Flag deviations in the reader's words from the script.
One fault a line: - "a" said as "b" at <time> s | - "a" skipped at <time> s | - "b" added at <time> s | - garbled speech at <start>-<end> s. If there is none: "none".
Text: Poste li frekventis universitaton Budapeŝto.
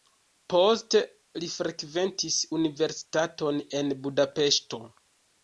- "en" added at 3.8 s